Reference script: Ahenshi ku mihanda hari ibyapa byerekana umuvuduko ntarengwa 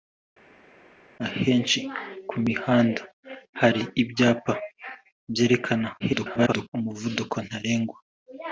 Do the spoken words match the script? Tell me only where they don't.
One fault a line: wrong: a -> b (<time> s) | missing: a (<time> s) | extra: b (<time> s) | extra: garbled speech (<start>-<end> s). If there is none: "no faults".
extra: garbled speech (6.0-6.7 s)